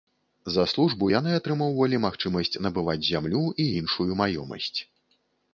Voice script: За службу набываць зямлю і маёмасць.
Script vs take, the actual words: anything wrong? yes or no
yes